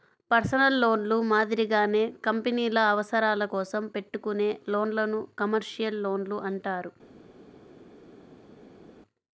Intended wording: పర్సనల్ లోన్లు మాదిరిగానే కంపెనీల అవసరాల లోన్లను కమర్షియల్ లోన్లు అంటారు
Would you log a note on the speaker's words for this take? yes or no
yes